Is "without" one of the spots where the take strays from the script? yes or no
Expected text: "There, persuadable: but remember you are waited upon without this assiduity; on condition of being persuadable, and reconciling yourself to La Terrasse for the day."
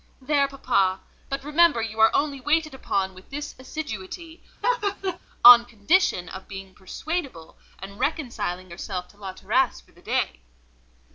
yes